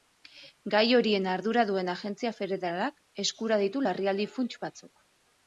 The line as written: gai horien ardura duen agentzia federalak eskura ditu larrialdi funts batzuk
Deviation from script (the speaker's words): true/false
false